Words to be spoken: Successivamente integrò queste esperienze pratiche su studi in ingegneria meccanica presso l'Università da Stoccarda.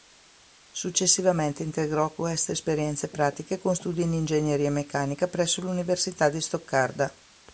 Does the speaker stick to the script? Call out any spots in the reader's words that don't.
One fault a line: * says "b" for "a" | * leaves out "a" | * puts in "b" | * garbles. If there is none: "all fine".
* says "con" for "su"
* says "di" for "da"